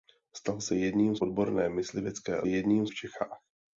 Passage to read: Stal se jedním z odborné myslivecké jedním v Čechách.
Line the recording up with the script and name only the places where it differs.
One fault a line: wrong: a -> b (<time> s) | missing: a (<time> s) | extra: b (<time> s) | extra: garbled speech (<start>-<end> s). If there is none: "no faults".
no faults